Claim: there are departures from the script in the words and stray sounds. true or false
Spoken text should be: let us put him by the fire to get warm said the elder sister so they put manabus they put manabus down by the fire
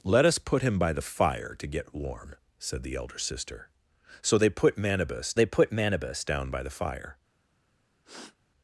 true